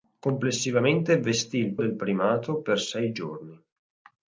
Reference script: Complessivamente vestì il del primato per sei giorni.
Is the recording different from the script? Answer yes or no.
no